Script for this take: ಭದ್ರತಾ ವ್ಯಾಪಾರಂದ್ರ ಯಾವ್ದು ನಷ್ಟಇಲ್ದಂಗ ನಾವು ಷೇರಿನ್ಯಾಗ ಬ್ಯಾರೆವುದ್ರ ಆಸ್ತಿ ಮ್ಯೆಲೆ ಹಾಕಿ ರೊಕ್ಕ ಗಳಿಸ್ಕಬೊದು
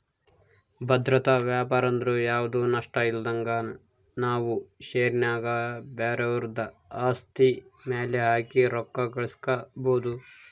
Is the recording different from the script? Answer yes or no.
no